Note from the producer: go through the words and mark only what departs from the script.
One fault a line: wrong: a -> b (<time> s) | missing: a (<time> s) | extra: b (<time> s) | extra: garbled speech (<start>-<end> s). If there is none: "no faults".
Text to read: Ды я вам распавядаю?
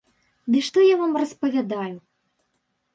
extra: што (0.7 s)